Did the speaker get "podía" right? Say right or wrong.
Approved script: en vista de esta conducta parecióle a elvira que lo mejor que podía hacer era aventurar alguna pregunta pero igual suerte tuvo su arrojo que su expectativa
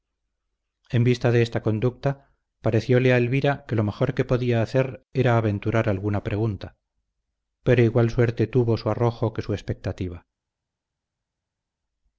right